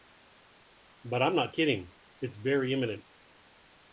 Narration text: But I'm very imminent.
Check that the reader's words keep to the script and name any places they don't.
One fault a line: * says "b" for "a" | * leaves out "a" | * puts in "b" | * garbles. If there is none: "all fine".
* puts in "not kidding It's"